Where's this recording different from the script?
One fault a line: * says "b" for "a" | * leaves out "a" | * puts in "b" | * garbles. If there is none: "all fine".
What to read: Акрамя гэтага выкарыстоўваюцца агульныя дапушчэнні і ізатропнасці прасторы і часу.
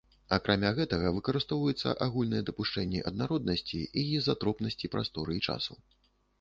* puts in "аднароднасці"